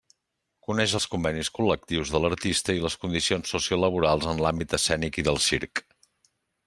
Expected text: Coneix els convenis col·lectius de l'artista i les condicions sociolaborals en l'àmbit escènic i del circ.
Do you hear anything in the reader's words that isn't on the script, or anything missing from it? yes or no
no